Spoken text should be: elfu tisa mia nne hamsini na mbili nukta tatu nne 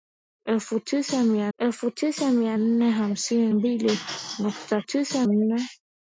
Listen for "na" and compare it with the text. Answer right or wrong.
wrong